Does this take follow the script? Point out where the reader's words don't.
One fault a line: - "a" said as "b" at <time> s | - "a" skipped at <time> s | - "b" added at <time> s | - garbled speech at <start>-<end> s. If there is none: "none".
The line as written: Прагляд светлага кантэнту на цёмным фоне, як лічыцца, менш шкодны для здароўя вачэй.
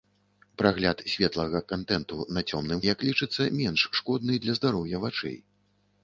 - "фоне" skipped at 2.8 s